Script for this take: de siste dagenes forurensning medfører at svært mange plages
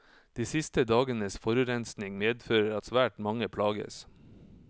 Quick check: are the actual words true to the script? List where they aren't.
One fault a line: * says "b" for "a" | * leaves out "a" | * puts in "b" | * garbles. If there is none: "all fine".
all fine